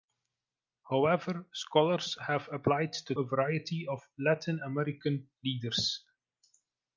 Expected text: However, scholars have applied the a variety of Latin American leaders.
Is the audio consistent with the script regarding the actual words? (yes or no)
yes